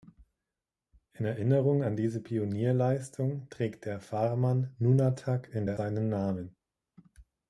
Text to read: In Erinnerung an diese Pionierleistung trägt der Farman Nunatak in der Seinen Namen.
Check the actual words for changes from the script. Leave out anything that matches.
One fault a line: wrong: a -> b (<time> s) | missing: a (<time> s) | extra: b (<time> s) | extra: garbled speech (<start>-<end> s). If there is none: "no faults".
no faults